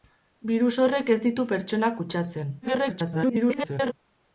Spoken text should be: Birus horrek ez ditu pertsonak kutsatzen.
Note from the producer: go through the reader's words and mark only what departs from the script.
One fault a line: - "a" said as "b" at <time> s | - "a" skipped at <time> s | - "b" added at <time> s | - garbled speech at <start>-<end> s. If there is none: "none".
- garbled speech at 2.6-3.9 s